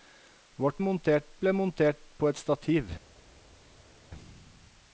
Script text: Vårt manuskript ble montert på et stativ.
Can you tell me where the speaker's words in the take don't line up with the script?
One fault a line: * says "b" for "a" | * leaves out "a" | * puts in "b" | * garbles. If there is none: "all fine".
* says "montert" for "manuskript"